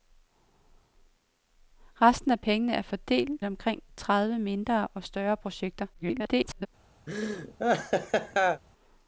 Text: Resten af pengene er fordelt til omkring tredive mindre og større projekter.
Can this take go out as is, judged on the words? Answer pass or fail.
fail